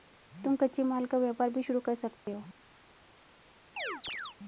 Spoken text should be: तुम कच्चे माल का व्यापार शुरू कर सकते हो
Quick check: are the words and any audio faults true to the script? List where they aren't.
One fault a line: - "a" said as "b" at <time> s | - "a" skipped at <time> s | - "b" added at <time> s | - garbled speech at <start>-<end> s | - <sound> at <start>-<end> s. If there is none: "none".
- "भी" added at 1.5 s
- dropout at 2.2-2.3 s
- chirp at 3.8-4.4 s